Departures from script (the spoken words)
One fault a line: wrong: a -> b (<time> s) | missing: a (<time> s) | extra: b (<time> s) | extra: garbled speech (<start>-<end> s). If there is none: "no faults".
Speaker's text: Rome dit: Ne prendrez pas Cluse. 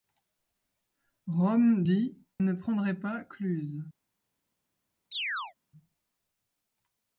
no faults